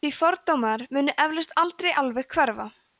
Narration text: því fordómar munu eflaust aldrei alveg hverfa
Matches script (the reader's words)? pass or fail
pass